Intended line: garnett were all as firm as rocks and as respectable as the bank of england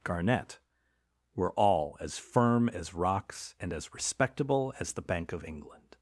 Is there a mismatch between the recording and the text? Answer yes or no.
no